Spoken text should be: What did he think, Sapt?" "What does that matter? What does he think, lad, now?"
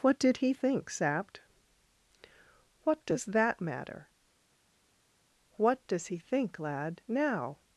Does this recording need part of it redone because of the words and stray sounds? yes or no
no